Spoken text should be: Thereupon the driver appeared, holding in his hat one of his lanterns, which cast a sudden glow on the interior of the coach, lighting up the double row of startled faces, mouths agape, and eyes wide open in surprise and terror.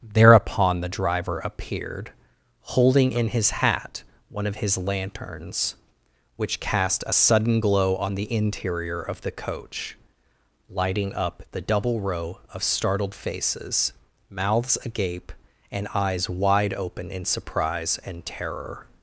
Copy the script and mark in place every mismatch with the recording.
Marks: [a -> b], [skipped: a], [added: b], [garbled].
Thereupon the driver appeared, holding in his hat one of his lanterns, which cast a sudden glow on the interior of the coach, lighting up the double row of startled faces, mouths agape, and eyes wide open in surprise and terror.